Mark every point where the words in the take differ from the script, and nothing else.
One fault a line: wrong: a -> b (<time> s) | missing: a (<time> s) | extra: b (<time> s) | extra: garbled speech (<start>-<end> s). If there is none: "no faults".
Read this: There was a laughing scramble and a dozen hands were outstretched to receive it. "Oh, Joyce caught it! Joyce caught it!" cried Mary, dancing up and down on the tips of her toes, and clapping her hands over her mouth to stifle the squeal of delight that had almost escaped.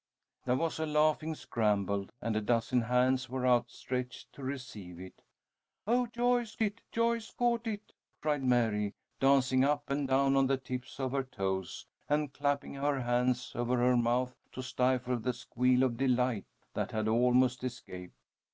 missing: caught (6.5 s)